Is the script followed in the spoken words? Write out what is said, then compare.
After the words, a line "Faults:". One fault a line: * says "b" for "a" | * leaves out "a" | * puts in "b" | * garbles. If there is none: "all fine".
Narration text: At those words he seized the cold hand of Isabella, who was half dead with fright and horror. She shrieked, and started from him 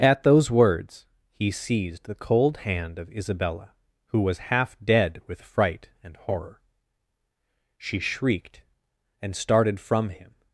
At those words he seized the cold hand of Isabella, who was half dead with fright and horror. She shrieked, and started from him
Faults:
all fine